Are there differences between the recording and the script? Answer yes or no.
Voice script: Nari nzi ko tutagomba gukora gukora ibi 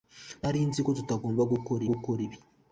no